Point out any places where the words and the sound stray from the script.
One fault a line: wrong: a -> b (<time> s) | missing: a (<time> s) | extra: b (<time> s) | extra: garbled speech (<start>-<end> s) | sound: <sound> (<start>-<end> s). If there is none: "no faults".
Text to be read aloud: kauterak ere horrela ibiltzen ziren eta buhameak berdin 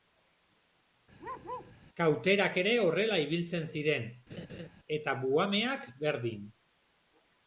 sound: bark (1.2-1.7 s)
sound: laugh (4.3-4.7 s)